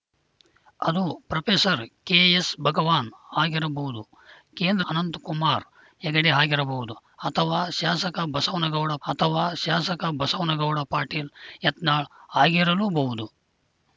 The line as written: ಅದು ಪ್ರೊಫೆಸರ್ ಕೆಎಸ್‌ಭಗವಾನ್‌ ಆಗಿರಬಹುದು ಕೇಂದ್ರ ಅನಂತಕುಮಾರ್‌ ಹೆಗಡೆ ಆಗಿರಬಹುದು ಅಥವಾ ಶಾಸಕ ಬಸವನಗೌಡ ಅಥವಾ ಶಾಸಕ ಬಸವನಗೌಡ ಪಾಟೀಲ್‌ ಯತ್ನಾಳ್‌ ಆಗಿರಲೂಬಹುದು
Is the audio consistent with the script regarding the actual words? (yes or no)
yes